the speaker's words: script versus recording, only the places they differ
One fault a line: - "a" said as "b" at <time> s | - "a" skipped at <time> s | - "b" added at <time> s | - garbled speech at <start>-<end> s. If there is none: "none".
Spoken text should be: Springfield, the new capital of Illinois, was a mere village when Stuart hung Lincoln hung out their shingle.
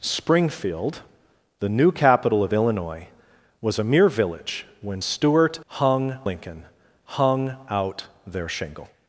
none